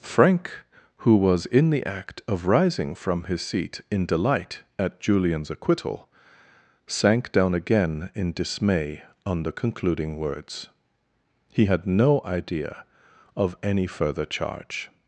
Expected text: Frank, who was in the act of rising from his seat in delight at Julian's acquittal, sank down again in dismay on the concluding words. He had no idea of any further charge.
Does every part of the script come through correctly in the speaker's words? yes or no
yes